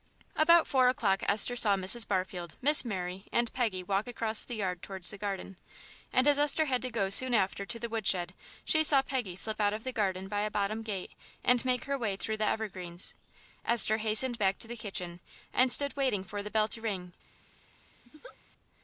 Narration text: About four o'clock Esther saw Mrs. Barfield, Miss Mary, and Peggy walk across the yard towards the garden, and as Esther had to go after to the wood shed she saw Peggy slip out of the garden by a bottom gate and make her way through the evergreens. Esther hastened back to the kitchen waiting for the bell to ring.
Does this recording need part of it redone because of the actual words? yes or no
yes